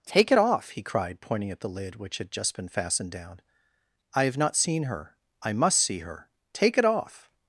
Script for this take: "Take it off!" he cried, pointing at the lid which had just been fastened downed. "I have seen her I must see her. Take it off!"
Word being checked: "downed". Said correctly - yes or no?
no